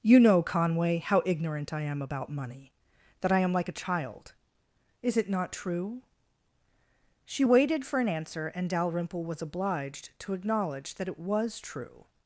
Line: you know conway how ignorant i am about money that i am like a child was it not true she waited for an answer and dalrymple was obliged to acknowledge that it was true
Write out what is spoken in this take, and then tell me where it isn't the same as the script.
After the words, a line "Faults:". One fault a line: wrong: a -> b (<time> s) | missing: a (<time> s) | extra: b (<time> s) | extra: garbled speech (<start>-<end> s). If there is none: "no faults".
you know conway how ignorant i am about money that i am like a child is it not true she waited for an answer and dalrymple was obliged to acknowledge that it was true
Faults:
wrong: was -> is (5.0 s)